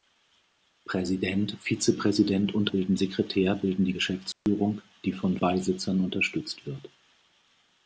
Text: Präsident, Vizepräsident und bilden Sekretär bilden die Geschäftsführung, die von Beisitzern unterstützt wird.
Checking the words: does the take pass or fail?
pass